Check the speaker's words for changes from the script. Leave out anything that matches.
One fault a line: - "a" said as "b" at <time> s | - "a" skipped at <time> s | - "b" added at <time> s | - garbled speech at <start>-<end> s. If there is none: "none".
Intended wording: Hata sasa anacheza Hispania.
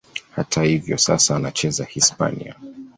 - "hivyo" added at 0.6 s